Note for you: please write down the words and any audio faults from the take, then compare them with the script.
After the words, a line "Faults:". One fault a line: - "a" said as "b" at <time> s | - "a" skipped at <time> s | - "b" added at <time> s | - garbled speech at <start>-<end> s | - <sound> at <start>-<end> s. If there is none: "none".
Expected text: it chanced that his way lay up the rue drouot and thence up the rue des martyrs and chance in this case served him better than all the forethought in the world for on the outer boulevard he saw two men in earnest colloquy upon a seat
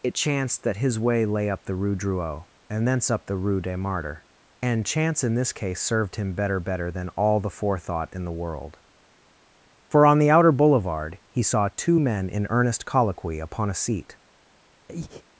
it chanced that his way lay up the rue drouot and thence up the rue des martyrs and chance in this case served him better better than all the forethought in the world for on the outer boulevard he saw two men in earnest colloquy upon a seat
Faults:
- "better" added at 6.6 s
- breath at 14.9-15.2 s